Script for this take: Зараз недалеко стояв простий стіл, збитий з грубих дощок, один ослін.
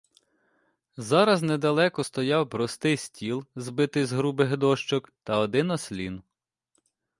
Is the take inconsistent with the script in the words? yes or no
yes